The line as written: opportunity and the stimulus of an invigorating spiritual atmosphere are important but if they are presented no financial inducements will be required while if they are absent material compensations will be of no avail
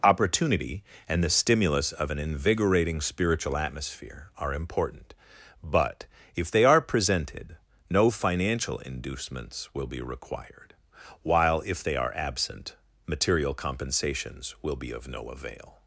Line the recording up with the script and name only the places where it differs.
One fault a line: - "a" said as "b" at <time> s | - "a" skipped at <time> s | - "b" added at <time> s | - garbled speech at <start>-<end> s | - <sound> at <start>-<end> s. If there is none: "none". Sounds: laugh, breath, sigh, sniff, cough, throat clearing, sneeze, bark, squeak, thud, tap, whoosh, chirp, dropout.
none